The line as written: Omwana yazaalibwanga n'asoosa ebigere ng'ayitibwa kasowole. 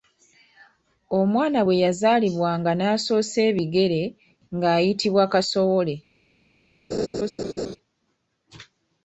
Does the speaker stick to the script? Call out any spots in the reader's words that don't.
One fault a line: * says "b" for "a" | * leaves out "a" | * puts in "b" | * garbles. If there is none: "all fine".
* puts in "bwe"